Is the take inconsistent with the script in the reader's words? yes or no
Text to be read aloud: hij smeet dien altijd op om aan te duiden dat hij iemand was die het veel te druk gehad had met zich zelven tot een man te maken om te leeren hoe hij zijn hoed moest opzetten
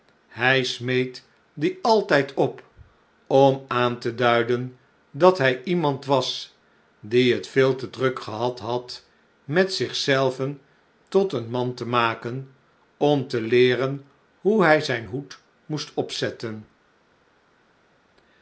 no